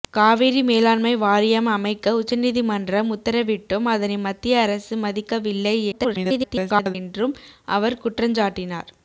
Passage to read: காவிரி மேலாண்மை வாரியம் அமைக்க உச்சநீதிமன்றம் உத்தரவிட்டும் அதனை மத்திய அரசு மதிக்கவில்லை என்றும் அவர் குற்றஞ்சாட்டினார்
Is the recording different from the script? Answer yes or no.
yes